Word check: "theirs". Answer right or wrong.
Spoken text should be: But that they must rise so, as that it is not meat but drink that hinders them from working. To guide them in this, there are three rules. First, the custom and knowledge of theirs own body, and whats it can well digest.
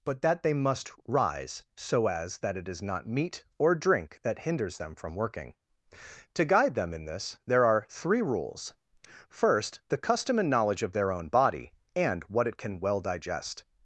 wrong